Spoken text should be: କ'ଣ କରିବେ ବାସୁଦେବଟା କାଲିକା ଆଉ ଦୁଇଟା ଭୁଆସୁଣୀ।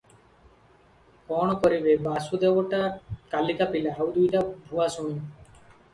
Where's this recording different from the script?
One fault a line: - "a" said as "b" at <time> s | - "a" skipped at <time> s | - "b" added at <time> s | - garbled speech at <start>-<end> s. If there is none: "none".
- "ପିଲା" added at 3.8 s